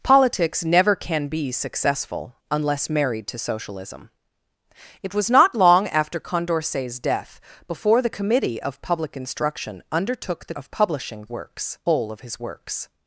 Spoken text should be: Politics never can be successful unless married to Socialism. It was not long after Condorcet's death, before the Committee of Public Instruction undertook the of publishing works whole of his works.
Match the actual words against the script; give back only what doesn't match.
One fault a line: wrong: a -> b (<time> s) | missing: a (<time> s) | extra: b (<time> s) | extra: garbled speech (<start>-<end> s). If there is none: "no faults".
no faults